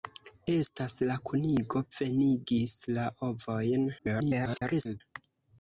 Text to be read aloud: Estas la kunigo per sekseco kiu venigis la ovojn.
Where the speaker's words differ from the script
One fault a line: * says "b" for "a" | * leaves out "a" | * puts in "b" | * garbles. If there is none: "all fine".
* leaves out "per sekseco kiu"
* garbles